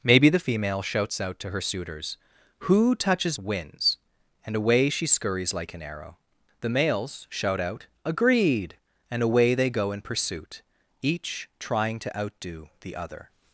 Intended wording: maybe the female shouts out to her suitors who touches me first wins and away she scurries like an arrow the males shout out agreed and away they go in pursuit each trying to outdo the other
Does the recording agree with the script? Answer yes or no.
no